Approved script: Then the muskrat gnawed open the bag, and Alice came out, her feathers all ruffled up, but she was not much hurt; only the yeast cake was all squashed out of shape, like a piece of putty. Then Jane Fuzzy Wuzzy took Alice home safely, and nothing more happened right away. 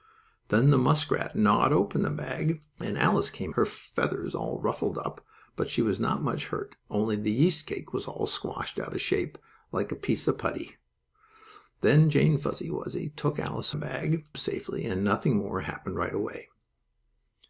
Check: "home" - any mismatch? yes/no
yes